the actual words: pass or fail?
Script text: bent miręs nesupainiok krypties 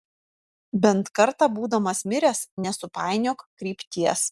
fail